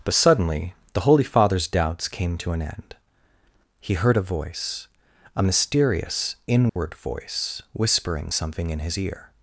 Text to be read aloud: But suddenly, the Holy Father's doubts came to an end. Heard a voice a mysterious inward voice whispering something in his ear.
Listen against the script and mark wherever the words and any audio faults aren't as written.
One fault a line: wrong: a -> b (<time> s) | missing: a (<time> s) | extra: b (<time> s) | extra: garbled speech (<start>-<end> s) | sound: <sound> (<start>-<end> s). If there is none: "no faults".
extra: He (3.8 s)
sound: dropout (6.7-6.8 s)